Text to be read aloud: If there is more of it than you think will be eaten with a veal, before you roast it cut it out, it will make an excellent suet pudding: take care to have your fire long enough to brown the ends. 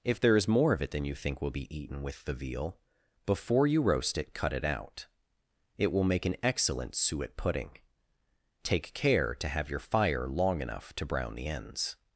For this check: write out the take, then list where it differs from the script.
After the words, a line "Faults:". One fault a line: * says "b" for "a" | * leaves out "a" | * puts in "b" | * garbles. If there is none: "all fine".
If there is more of it than you think will be eaten with the veal, before you roast it cut it out, it will make an excellent suet pudding: take care to have your fire long enough to brown the ends.
Faults:
* says "the" for "a"